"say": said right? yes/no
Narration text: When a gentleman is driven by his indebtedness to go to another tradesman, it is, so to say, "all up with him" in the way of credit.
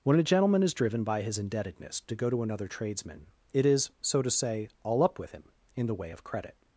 yes